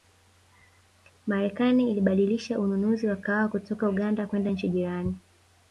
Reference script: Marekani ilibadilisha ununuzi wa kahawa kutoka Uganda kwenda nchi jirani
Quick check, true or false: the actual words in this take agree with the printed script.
true